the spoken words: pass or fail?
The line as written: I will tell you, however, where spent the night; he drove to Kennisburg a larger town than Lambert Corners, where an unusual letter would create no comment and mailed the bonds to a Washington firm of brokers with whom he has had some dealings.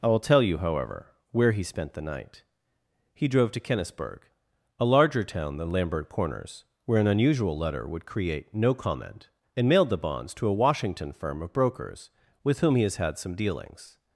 fail